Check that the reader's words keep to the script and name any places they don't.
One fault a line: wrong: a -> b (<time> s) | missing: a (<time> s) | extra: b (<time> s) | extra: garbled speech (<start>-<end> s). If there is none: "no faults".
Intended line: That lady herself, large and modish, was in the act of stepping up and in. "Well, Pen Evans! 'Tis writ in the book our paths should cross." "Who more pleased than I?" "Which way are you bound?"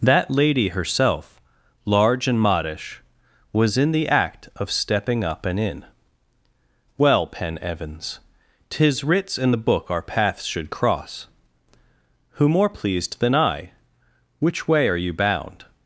wrong: writ -> writs (9.0 s)